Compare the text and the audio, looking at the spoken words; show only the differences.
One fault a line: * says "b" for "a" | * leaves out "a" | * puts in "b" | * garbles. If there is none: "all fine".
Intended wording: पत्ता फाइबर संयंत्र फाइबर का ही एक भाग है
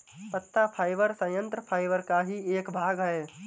all fine